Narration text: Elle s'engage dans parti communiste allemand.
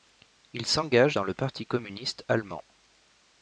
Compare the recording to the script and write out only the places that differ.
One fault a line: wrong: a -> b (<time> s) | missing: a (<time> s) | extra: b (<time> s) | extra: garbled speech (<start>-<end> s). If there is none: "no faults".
wrong: Elle -> Il (0.5 s)
extra: le (1.2 s)